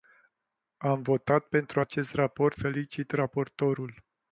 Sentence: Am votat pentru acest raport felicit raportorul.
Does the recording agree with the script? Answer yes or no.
yes